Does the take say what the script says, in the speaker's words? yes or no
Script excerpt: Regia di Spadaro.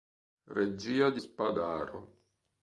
yes